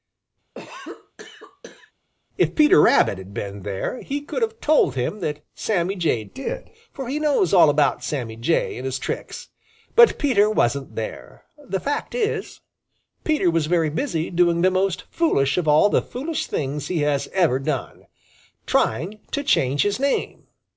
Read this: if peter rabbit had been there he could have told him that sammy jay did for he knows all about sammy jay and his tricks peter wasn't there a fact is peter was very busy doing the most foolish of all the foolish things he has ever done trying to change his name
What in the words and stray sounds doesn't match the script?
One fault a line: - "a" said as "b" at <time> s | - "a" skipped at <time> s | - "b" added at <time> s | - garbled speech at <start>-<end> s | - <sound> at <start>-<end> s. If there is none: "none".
- cough at 0.5-1.9 s
- "but" added at 9.9 s
- "a" said as "the" at 11.6 s